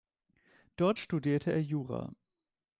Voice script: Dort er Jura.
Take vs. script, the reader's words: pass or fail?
fail